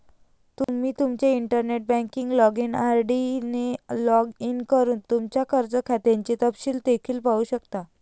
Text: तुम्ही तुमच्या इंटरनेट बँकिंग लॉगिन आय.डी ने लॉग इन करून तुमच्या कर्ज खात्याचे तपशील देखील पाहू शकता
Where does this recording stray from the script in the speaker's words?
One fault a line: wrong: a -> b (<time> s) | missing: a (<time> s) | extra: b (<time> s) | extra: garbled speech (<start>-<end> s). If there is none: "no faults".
no faults